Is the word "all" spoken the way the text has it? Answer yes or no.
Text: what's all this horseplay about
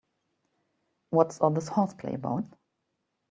yes